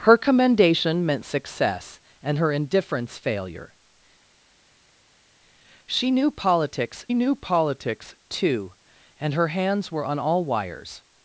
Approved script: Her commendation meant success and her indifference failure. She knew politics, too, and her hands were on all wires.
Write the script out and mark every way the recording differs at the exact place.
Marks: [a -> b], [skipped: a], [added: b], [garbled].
Her commendation meant success and her indifference failure. She knew politics, [added: knew politics] too, and her hands were on all wires.